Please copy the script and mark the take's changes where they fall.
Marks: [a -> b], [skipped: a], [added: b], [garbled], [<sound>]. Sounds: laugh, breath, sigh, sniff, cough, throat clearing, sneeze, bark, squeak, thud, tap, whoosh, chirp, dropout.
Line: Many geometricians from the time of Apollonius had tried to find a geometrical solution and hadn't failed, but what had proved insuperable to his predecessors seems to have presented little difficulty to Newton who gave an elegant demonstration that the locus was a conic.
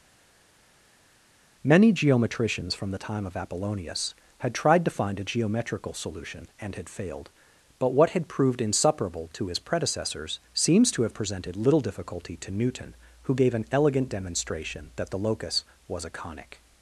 Many geometricians from the time of Apollonius had tried to find a geometrical solution and [hadn't -> had] failed, but what had proved insuperable to his predecessors seems to have presented little difficulty to Newton who gave an elegant demonstration that the locus was a conic.